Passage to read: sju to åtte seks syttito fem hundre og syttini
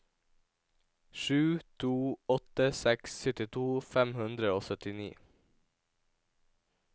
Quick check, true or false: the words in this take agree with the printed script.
true